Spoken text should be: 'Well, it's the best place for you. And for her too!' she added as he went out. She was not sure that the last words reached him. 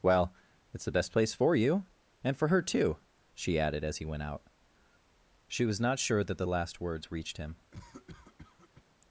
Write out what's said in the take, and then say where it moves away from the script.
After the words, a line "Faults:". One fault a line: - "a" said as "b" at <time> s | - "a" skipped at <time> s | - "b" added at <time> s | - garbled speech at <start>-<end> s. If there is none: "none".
'Well, it's the best place for you. And for her too!' she added as he went out. She was not sure that the last words reached him.
Faults:
none